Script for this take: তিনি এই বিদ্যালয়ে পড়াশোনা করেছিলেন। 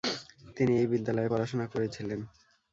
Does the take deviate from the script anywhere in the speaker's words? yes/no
no